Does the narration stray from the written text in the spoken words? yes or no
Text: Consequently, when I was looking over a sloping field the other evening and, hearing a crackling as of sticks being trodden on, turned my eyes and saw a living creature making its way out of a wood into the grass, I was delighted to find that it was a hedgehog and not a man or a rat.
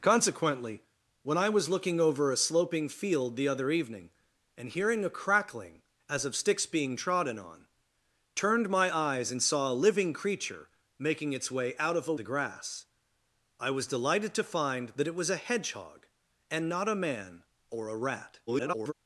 yes